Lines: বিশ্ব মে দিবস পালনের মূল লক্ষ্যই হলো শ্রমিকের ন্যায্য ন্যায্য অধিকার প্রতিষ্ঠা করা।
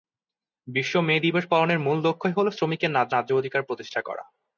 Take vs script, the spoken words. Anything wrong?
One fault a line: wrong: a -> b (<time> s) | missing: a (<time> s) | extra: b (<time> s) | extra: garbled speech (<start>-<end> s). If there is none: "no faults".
no faults